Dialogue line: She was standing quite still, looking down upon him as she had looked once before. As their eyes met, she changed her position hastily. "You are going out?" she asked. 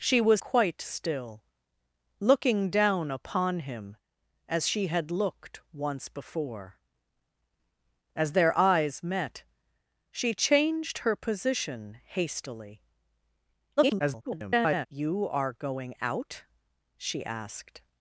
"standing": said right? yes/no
no